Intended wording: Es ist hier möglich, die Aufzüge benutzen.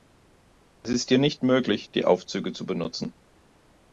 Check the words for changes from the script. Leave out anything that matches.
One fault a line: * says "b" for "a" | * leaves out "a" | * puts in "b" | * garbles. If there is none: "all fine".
* puts in "nicht"
* puts in "zu"